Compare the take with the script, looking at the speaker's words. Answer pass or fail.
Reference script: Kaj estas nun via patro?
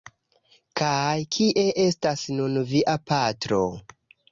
fail